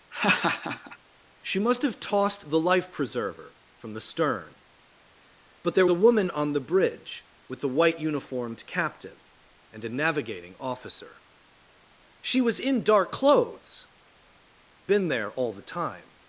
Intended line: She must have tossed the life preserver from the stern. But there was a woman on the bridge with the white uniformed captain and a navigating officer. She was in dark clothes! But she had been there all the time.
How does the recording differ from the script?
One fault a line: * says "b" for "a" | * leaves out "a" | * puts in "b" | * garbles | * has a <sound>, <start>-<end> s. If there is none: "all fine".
* has a laugh, 0.1-1.0 s
* leaves out "was"
* leaves out "But she had"